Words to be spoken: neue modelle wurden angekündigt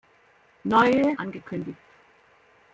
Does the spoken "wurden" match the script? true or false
false